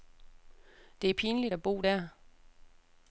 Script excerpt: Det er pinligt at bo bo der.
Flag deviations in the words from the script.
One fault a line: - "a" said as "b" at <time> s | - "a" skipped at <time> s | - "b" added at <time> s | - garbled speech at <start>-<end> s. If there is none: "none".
- "bo" skipped at 1.8 s